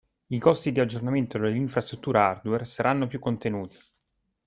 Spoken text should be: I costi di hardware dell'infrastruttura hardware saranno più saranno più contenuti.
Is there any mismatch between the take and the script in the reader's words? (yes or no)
yes